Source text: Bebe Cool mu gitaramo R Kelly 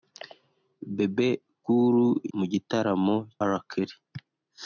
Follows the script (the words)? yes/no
yes